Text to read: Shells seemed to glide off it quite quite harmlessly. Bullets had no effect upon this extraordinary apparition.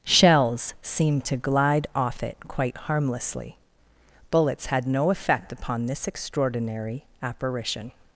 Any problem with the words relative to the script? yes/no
yes